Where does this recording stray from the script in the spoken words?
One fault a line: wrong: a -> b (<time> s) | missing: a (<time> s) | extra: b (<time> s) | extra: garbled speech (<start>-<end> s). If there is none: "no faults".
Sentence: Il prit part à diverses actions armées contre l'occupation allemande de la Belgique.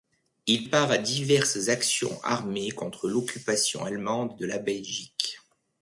missing: prit (0.6 s)